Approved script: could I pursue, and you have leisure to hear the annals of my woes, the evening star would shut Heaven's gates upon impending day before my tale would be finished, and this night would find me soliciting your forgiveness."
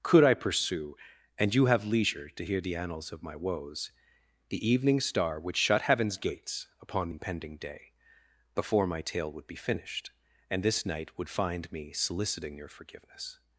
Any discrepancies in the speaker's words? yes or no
no